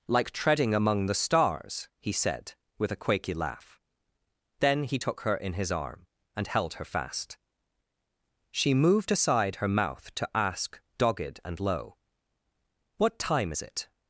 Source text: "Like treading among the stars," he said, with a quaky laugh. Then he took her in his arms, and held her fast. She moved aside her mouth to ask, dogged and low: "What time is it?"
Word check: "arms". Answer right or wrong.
wrong